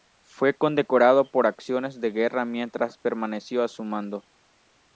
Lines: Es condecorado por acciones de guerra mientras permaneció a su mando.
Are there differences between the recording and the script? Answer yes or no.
yes